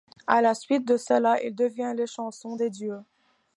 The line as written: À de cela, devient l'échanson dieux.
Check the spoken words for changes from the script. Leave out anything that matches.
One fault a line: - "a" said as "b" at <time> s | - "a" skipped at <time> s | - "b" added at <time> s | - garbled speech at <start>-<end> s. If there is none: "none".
- "la suite" added at 0.4 s
- "il" added at 1.4 s
- "des" added at 2.5 s